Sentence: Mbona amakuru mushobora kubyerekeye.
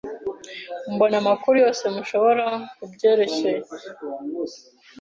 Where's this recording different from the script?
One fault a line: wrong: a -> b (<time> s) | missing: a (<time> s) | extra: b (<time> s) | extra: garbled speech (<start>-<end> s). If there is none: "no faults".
extra: yose (1.6 s)